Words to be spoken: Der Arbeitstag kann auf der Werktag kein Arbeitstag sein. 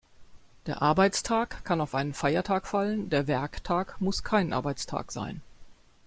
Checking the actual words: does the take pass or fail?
fail